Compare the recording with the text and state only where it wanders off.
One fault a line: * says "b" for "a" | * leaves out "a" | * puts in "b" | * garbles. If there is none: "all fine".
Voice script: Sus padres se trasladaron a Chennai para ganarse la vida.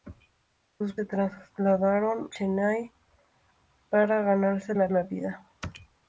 * leaves out "padres"
* leaves out "a"
* puts in "la"